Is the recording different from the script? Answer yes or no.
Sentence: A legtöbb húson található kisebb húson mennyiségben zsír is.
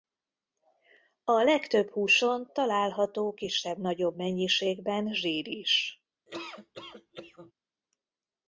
yes